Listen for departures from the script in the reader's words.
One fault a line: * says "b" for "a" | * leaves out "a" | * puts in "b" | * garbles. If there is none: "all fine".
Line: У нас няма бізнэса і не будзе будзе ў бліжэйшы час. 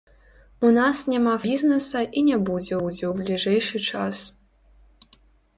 all fine